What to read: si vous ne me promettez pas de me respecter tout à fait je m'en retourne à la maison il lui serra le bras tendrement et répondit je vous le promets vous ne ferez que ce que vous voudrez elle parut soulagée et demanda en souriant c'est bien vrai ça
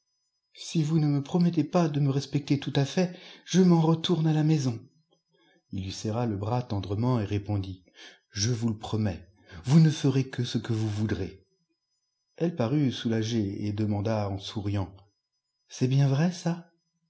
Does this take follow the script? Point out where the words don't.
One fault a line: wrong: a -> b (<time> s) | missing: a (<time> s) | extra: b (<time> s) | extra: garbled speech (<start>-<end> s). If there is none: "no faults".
no faults